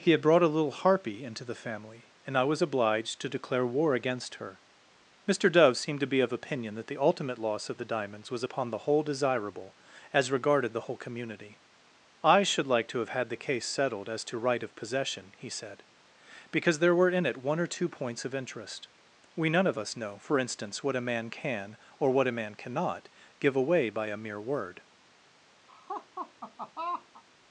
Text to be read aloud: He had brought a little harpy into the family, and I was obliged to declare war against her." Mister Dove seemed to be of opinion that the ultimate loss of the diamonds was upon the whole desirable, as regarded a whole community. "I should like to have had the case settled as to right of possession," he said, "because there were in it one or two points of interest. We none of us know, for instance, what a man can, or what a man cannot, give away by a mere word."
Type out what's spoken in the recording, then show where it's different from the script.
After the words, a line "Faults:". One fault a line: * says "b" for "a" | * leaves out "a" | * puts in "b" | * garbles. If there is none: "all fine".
He had brought a little harpy into the family, and I was obliged to declare war against her." Mister Dove seemed to be of opinion that the ultimate loss of the diamonds was upon the whole desirable, as regarded the whole community. "I should like to have had the case settled as to right of possession," he said, "because there were in it one or two points of interest. We none of us know, for instance, what a man can, or what a man cannot, give away by a mere word."
Faults:
* says "the" for "a"